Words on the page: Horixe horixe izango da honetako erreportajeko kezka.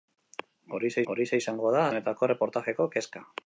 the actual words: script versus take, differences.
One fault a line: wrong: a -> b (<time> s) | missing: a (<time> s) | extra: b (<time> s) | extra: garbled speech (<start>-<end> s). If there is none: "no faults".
no faults